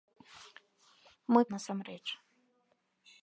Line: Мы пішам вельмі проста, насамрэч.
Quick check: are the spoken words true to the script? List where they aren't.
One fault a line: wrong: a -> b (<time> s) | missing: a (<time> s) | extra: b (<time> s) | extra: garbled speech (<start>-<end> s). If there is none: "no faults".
missing: пішам вельмі проста (1.4 s)